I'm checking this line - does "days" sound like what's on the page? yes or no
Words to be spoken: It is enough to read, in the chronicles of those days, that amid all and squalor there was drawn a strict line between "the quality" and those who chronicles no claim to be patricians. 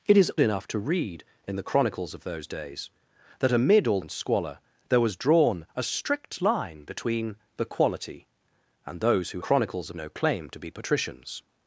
yes